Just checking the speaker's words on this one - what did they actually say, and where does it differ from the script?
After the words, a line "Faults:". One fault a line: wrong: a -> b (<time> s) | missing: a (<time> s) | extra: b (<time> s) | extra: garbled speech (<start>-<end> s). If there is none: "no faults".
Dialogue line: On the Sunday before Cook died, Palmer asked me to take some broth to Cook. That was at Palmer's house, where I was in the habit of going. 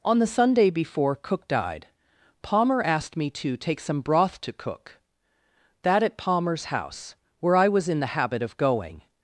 On the Sunday before Cook died, Palmer asked me to take some broth to Cook. That at Palmer's house, where I was in the habit of going.
Faults:
missing: was (6.0 s)